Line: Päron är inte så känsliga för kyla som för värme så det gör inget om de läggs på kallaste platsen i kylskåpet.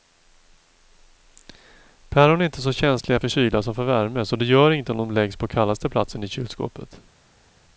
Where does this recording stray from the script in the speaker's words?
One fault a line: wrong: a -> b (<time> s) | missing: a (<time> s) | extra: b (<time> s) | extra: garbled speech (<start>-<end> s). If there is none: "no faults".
no faults